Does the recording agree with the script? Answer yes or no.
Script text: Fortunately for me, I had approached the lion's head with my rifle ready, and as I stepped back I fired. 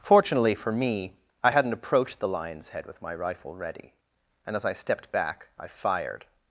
no